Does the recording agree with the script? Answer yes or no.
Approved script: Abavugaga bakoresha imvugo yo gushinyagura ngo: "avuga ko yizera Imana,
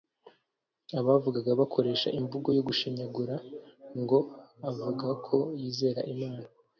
yes